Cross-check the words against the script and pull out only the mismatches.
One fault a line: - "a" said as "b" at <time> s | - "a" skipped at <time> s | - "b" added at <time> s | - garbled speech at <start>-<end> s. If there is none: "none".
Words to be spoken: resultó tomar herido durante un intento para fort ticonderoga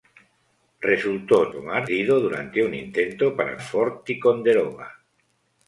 none